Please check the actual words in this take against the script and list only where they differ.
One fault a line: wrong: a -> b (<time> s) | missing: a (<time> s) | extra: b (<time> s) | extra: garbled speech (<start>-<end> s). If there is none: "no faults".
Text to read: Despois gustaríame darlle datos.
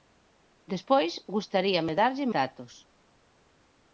no faults